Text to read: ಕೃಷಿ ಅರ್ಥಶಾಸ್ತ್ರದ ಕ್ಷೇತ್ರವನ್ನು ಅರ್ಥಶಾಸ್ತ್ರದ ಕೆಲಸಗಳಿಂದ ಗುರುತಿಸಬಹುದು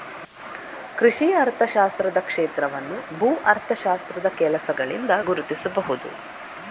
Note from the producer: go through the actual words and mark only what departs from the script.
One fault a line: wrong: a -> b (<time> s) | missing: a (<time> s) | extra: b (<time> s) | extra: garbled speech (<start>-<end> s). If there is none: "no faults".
extra: ಭೂ (3.2 s)